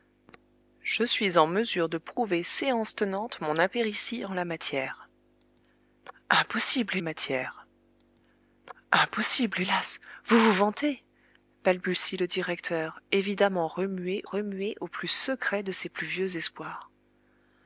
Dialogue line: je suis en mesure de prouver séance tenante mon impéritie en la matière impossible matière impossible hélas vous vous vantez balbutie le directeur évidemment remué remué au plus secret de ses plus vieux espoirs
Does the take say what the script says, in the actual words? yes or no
yes